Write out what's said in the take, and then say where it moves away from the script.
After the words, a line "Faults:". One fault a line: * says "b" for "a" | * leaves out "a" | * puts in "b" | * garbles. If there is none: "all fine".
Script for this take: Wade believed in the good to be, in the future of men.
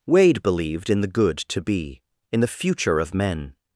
Wade believed in the good to be, in the future of men.
Faults:
all fine